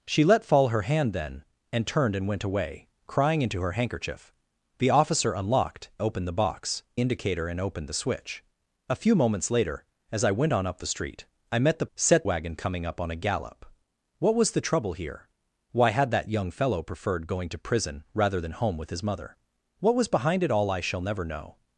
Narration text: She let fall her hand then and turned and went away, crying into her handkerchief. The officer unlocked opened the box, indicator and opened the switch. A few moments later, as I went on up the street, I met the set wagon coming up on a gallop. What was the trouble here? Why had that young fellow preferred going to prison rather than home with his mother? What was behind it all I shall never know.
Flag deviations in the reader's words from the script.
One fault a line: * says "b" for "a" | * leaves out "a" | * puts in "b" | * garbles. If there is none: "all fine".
all fine